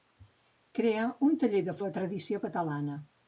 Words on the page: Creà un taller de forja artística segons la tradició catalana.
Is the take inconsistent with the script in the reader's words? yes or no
yes